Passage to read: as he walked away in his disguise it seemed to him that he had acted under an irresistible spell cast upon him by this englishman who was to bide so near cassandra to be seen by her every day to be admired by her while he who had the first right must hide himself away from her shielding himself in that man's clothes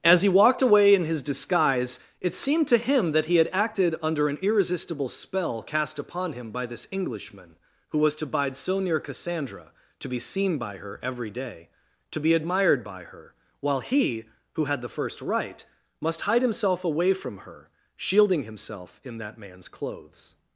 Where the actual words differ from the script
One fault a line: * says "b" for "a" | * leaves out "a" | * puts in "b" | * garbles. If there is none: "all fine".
all fine